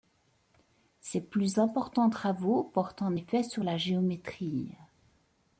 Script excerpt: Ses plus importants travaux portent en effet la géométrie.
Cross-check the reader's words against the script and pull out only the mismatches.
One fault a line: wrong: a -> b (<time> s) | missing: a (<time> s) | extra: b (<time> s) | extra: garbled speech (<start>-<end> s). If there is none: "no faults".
extra: sur (3.4 s)